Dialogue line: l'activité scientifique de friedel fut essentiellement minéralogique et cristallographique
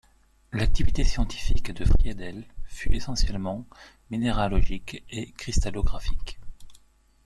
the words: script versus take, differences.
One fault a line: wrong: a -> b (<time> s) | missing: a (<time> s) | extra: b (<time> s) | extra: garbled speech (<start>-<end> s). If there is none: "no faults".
no faults